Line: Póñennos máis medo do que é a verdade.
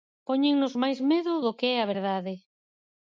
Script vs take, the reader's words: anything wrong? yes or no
no